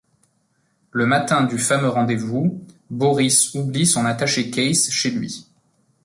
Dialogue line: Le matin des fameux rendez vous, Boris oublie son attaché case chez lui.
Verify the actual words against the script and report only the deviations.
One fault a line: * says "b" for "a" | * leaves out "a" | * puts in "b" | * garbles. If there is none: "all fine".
* says "du" for "des"